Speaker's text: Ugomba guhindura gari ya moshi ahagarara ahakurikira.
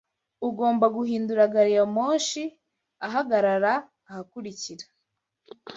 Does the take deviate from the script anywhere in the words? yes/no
no